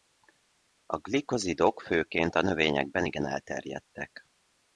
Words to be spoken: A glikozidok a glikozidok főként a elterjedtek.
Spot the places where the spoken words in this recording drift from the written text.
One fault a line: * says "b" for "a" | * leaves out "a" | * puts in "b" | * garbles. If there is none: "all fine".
* puts in "főként"
* says "növényekben igen" for "glikozidok főként a"